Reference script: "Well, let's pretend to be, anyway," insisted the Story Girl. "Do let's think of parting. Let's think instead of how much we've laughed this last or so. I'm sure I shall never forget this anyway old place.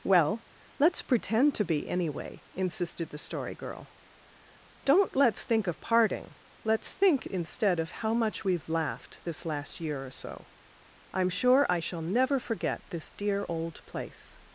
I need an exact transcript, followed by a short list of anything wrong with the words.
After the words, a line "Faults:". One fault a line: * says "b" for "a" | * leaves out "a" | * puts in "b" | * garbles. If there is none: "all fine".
"Well, let's pretend to be, anyway," insisted the Story Girl. "Don't let's think of parting. Let's think instead of how much we've laughed this last year or so. I'm sure I shall never forget this dear old place.
Faults:
* says "Don't" for "Do"
* puts in "year"
* says "dear" for "anyway"